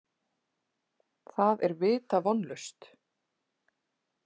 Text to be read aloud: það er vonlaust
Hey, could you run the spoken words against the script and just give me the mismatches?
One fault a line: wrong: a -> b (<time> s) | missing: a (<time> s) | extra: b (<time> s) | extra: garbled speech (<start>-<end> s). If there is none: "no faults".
extra: vita (1.8 s)